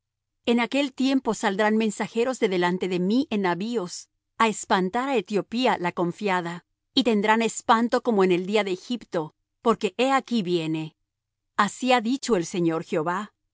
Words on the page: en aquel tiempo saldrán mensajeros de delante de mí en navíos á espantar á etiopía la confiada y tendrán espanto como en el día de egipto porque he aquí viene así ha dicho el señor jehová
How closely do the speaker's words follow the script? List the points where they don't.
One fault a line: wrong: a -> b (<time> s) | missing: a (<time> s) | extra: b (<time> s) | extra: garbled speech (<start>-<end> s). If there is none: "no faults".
no faults